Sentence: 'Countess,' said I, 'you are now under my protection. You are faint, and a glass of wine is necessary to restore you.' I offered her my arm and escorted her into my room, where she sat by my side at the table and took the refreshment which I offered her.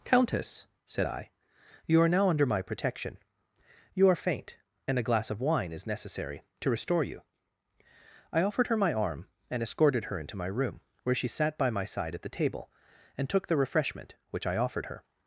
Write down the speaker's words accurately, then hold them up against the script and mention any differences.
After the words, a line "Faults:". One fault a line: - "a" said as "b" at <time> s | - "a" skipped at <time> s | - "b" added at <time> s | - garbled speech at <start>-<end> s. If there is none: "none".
'Countess,' said I, 'you are now under my protection. You are faint, and a glass of wine is necessary to restore you.' I offered her my arm and escorted her into my room, where she sat by my side at the table and took the refreshment which I offered her.
Faults:
none